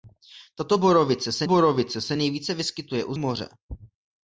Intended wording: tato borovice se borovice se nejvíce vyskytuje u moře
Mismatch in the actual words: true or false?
false